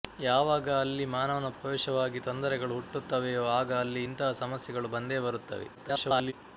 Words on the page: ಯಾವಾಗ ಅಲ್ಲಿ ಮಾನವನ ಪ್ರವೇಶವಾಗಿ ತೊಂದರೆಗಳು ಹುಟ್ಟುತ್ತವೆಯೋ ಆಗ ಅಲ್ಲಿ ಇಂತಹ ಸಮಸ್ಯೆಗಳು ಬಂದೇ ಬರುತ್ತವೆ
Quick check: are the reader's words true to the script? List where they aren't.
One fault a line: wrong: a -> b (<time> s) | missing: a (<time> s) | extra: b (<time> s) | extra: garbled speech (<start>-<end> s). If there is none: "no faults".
extra: garbled speech (5.7-6.3 s)